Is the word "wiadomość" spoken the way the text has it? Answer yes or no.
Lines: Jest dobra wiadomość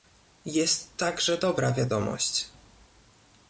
yes